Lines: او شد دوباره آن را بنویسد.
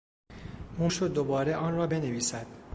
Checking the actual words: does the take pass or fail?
pass